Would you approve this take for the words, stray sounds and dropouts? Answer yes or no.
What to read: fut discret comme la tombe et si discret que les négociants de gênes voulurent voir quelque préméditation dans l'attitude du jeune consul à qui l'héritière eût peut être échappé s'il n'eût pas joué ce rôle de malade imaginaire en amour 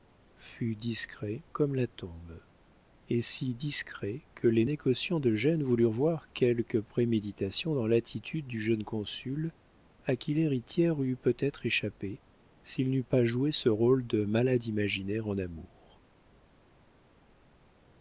yes